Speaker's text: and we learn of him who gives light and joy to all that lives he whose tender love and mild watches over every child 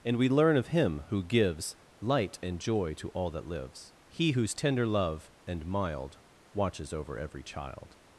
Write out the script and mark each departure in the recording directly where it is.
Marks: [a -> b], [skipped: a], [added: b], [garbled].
and we learn of him who gives light and joy to all that lives he whose tender love and mild watches over every child